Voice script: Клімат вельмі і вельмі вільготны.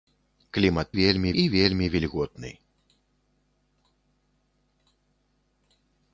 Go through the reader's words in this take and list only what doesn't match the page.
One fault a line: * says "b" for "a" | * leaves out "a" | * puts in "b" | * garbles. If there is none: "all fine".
all fine